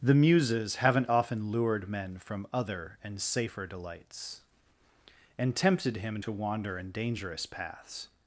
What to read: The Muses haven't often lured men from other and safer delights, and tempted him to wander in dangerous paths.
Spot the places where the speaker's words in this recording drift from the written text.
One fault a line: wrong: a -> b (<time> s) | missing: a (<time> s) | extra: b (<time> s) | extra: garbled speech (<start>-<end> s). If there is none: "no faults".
no faults